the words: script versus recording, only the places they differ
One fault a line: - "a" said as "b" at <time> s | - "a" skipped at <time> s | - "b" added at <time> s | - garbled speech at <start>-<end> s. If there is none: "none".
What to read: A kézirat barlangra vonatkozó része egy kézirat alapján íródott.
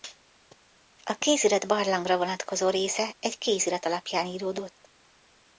none